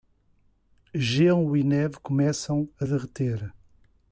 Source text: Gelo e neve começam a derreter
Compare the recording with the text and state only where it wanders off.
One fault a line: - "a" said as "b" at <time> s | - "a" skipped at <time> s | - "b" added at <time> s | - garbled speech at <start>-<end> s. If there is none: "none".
none